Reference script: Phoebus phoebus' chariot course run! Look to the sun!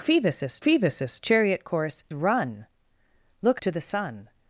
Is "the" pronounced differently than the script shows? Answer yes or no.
no